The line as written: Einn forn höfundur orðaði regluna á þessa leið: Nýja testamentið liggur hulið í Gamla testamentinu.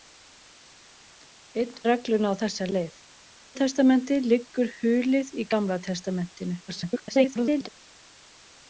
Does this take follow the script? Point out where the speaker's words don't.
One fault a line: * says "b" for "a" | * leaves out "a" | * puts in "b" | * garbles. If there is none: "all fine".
* leaves out "forn höfundur orðaði"
* leaves out "Nýja"
* garbles